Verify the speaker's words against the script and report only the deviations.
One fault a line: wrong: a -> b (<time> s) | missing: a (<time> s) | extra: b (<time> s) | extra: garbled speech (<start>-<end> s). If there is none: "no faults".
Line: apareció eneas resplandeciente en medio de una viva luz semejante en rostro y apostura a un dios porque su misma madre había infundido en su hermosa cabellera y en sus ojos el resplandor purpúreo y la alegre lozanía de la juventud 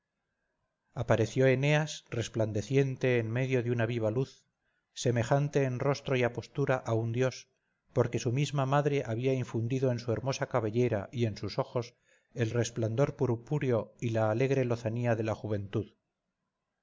no faults